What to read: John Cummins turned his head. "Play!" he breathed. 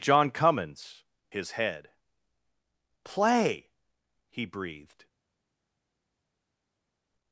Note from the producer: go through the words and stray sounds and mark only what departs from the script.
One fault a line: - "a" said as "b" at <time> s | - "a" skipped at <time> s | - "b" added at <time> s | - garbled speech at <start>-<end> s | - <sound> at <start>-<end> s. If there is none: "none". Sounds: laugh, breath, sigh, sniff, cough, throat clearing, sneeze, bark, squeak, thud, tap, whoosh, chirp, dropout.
- "turned" skipped at 1.0 s